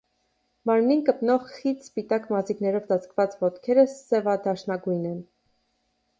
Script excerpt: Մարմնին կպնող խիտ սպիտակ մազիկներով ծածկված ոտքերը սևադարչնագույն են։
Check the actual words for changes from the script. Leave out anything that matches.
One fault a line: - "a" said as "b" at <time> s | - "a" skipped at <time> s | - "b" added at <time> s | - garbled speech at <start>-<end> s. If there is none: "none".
none